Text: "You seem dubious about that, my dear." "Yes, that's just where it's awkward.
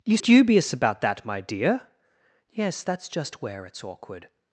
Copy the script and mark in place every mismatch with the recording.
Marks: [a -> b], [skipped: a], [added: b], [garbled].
"You [skipped: seem] dubious about that, my dear." "Yes, that's just where it's awkward.